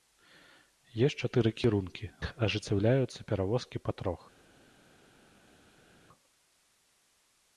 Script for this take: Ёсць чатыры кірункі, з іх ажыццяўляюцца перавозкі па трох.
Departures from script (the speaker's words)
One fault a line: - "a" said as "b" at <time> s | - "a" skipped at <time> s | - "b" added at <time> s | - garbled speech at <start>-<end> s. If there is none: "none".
- "з" skipped at 2.0 s